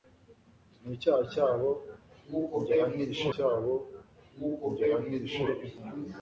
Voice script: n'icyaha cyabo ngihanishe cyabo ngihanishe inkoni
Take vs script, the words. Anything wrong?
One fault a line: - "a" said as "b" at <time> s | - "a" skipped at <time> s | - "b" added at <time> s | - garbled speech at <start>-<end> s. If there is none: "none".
none